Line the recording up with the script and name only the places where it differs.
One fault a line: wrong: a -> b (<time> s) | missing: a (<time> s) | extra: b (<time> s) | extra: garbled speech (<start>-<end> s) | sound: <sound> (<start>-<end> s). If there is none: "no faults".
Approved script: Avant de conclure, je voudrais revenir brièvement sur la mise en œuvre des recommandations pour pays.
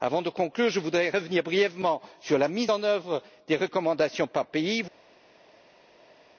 wrong: pour -> par (4.3 s)